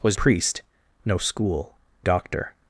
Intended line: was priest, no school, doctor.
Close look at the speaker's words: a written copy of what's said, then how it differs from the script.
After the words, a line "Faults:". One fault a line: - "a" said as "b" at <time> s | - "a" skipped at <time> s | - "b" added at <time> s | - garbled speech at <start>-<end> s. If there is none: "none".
was priest, no school, doctor.
Faults:
none